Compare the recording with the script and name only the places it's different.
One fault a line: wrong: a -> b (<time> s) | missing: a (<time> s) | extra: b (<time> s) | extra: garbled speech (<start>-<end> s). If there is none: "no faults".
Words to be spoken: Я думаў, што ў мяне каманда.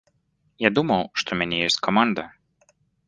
extra: ёсць (1.7 s)